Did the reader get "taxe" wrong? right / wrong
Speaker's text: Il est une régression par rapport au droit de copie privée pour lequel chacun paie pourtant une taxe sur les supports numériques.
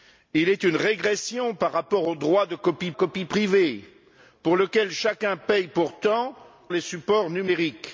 wrong